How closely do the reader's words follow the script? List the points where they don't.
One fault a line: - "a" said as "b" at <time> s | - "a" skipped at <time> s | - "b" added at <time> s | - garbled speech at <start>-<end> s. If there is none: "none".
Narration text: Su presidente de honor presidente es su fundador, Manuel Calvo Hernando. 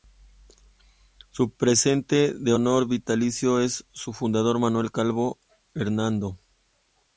- "presidente" said as "vitalicio" at 2.9 s